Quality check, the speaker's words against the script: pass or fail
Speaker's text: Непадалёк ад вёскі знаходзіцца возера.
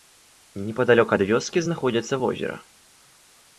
pass